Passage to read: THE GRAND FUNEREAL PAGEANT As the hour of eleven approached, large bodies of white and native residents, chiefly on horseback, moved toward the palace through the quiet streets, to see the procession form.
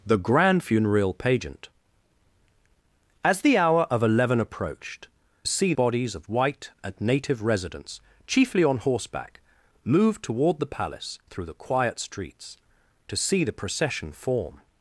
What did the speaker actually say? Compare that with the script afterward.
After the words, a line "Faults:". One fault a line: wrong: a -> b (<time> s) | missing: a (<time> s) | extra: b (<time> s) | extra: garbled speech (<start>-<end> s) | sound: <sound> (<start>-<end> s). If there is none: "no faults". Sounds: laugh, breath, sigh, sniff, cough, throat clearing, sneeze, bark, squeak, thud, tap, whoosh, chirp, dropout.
THE GRAND FUNEREAL PAGEANT As the hour of eleven approached, see bodies of white and native residents, chiefly on horseback, moved toward the palace through the quiet streets, to see the procession form.
Faults:
wrong: large -> see (5.4 s)